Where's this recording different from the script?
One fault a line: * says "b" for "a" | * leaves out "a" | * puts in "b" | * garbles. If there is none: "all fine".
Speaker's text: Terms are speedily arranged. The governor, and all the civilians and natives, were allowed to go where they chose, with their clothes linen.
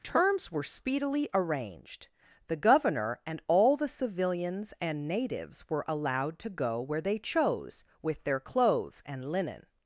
* says "were" for "are"
* puts in "and"